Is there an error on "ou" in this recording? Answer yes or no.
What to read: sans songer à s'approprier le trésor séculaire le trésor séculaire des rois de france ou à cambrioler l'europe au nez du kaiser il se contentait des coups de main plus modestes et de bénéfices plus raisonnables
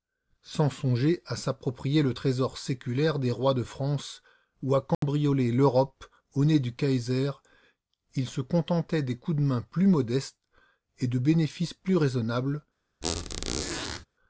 no